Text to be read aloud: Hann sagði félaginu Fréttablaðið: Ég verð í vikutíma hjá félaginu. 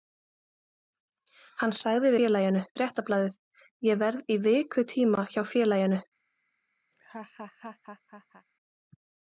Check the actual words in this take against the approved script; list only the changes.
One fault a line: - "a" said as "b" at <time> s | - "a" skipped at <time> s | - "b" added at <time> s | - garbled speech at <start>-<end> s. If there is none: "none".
none